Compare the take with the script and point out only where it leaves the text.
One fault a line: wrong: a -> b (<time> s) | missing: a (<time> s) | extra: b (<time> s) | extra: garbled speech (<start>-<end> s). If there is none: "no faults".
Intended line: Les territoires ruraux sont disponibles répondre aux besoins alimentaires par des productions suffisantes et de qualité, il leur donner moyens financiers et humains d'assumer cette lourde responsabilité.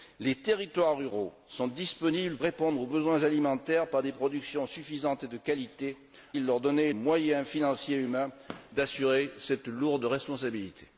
no faults